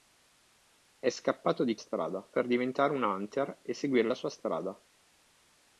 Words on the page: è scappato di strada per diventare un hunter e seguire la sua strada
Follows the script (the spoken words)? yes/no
yes